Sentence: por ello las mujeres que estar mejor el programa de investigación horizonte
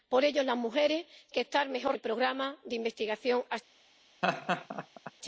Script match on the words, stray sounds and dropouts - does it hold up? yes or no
no